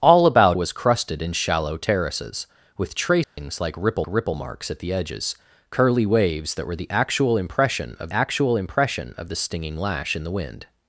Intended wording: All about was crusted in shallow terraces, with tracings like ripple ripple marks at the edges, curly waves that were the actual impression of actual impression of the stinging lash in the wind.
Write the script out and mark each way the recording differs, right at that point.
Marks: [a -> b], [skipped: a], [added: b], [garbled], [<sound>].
All about was crusted in shallow terraces, with tracings [dropout] like ripple ripple marks at the edges, curly waves that were the actual impression of actual impression of the stinging lash in the wind.